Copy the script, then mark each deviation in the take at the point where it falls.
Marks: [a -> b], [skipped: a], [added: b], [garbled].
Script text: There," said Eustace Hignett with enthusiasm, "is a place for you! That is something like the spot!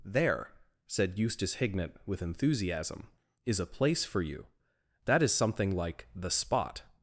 There," said Eustace Hignett with enthusiasm, "is a place for you! That is something like the spot!